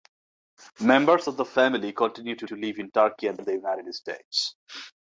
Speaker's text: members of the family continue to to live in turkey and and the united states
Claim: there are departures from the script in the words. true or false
false